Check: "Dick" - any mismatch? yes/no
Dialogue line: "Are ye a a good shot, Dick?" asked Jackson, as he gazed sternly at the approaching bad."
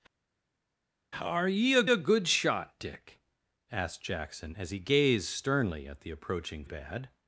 no